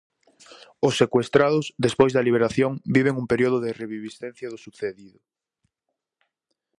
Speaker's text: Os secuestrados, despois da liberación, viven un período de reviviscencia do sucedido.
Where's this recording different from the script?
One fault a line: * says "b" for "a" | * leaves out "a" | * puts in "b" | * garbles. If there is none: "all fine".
all fine